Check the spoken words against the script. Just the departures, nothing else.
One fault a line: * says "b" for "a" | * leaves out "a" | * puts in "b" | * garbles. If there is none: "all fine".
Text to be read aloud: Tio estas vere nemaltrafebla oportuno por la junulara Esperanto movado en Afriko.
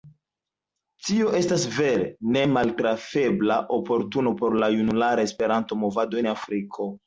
all fine